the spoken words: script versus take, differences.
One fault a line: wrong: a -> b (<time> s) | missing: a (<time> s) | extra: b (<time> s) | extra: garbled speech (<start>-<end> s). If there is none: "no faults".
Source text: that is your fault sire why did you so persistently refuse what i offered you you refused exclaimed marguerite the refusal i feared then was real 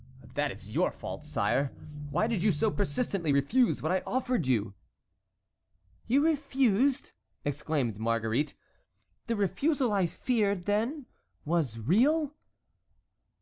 no faults